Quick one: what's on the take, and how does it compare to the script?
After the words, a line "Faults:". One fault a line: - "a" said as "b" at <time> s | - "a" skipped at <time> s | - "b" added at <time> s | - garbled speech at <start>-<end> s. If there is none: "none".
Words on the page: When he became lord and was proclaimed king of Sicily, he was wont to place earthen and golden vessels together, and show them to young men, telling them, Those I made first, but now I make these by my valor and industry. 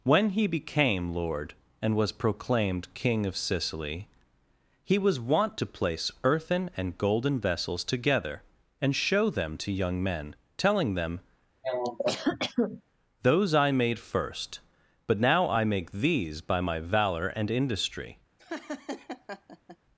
When he became lord and was proclaimed king of Sicily, he was wont to place earthen and golden vessels together, and show them to young men, telling them, Those I made first, but now I make these by my valor and industry.
Faults:
none